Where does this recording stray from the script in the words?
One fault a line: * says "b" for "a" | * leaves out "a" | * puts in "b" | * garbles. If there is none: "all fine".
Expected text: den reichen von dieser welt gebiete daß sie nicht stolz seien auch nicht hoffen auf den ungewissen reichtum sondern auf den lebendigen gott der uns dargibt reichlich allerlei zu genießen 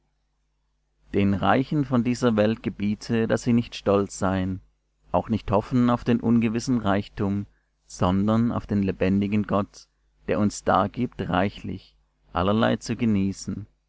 all fine